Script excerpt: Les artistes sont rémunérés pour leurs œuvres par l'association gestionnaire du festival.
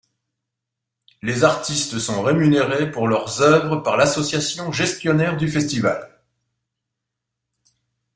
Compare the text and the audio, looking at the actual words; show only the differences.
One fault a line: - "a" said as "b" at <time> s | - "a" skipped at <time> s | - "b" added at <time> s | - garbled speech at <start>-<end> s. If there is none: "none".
none